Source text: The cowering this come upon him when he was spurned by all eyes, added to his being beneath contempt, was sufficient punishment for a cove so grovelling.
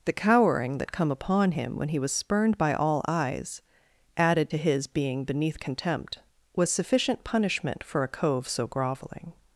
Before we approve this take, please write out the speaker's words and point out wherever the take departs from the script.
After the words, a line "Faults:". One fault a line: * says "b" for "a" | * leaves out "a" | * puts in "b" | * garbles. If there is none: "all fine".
The cowering that come upon him when he was spurned by all eyes, added to his being beneath contempt, was sufficient punishment for a cove so grovelling.
Faults:
* says "that" for "this"